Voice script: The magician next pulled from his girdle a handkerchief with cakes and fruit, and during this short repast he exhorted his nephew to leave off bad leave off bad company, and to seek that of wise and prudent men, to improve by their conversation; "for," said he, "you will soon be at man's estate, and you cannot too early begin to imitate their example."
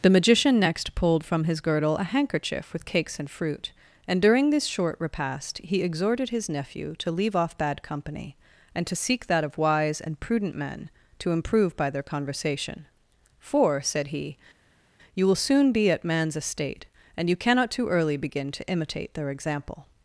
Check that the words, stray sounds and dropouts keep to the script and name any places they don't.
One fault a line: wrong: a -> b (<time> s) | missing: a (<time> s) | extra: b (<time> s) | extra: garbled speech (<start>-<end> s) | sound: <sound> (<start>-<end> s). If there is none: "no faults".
missing: leave off bad (7.8 s)